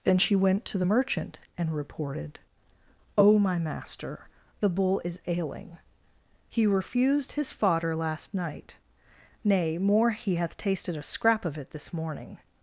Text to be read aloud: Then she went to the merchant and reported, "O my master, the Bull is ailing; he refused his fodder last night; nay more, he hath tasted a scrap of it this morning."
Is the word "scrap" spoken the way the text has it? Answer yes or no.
yes